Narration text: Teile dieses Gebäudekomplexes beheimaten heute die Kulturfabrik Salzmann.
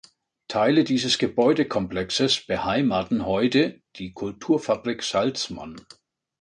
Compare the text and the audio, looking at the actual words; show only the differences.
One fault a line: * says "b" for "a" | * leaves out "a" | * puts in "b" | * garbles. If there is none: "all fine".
all fine